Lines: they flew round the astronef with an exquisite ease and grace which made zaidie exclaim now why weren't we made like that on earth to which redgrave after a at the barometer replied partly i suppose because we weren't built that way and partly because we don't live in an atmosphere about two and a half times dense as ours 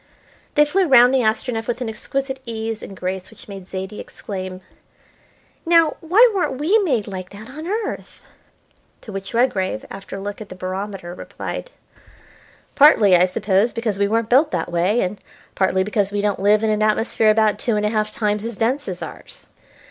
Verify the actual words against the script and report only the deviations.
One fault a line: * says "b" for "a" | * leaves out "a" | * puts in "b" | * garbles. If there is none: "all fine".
* puts in "look"
* puts in "as"